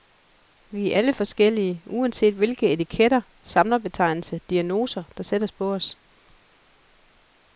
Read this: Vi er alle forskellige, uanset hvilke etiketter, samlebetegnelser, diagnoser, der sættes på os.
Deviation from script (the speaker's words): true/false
false